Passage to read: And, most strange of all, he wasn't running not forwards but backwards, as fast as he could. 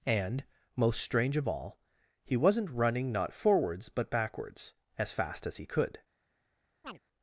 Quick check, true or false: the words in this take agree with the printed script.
true